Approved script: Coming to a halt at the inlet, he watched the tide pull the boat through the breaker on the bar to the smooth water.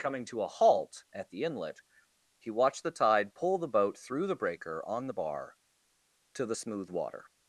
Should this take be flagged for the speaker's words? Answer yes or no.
no